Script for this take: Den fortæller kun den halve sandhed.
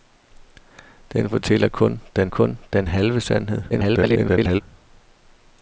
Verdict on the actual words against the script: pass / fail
fail